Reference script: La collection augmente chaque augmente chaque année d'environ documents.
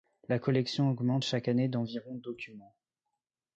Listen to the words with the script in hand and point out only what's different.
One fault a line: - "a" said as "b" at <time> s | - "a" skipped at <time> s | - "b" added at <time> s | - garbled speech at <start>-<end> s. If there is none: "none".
- "augmente chaque" skipped at 1.5 s